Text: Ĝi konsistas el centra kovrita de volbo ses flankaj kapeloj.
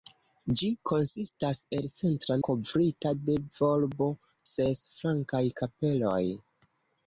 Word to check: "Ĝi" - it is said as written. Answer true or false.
true